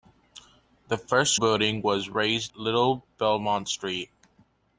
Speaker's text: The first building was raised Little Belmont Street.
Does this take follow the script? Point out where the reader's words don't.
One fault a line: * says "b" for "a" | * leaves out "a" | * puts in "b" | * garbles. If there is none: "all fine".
all fine